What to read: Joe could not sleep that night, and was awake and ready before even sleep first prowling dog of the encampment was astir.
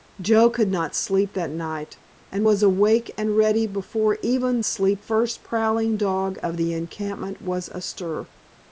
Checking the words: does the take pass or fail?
pass